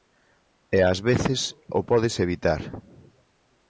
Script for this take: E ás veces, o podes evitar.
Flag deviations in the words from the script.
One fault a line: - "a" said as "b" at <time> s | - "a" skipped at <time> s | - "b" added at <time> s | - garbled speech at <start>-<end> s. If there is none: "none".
none